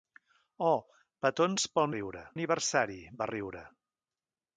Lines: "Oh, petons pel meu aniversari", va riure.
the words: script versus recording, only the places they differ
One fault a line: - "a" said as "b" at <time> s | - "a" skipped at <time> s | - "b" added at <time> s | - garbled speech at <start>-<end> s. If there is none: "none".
- "meu" said as "riure" at 2.0 s